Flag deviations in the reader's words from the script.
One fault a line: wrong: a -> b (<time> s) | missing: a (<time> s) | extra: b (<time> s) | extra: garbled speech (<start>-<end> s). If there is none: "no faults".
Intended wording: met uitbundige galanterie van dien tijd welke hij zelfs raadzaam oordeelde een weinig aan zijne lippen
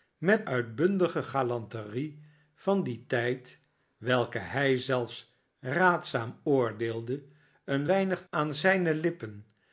no faults